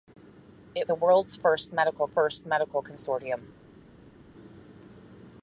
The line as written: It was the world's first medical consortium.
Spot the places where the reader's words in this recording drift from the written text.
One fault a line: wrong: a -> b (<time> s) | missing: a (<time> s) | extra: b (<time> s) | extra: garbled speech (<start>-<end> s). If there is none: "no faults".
missing: was (0.9 s)
extra: first medical (2.1 s)